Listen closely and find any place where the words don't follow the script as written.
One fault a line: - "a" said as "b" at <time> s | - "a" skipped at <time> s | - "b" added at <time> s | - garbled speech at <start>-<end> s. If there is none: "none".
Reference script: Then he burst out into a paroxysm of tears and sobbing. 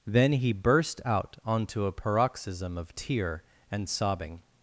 - "into" said as "onto" at 1.4 s
- "tears" said as "tear" at 2.9 s